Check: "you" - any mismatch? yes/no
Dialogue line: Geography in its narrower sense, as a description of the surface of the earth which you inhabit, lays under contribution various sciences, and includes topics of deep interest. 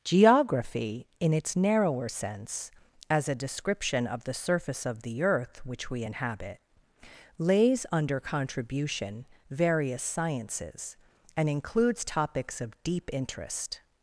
yes